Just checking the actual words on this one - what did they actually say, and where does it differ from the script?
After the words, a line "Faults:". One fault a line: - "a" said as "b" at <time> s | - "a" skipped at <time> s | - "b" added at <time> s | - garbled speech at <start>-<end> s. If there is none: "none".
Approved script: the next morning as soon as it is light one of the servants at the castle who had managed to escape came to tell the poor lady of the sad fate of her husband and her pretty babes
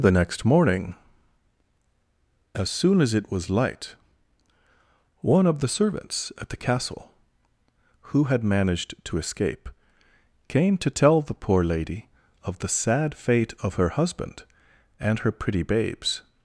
the next morning as soon as it was light one of the servants at the castle who had managed to escape came to tell the poor lady of the sad fate of her husband and her pretty babes
Faults:
- "is" said as "was" at 3.3 s